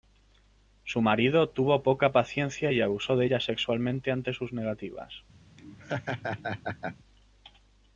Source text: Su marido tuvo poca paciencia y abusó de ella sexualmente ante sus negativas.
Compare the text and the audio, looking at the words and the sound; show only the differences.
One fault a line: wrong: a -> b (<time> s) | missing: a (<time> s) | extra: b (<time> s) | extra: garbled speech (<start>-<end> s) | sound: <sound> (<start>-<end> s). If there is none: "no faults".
sound: laugh (5.6-7.0 s)